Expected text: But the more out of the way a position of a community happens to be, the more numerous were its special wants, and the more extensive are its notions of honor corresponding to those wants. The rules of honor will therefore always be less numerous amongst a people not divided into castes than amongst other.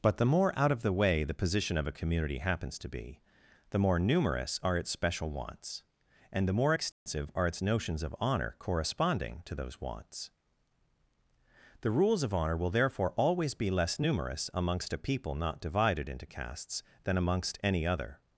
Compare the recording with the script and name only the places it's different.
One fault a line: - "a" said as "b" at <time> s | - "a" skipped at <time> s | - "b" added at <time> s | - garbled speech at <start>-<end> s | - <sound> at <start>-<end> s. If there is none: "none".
- "a" said as "the" at 1.2 s
- "were" said as "are" at 4.6 s
- dropout at 6.9-7.1 s
- "any" added at 17.6 s